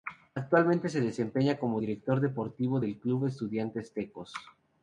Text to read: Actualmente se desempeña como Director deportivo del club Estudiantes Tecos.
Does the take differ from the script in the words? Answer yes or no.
no